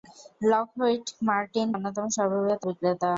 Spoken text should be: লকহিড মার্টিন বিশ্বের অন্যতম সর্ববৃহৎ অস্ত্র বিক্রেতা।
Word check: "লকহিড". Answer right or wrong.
right